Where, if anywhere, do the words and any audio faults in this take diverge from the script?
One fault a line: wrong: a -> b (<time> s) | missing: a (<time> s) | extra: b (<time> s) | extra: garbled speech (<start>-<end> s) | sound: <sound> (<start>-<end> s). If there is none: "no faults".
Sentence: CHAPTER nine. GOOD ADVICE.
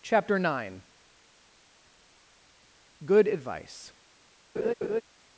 sound: laugh (4.6-5.0 s)